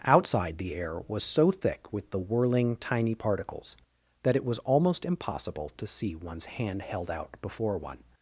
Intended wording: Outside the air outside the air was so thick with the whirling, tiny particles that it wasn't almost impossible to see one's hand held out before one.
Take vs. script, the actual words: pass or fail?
fail